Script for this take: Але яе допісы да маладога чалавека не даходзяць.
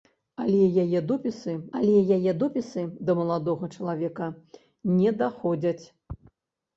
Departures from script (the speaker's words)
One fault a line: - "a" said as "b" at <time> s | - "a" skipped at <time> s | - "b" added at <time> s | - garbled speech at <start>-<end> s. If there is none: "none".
- "але яе допісы" added at 1.8 s